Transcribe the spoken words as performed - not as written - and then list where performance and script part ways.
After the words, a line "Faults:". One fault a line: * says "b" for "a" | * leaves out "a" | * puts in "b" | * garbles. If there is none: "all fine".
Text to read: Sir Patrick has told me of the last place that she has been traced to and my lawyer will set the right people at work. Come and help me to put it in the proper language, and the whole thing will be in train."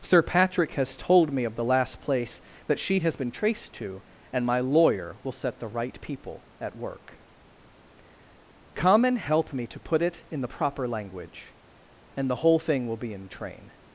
Sir Patrick has told me of the last place that she has been traced to and my lawyer will set the right people at work. Come and help me to put it in the proper language, and the whole thing will be in train."
Faults:
all fine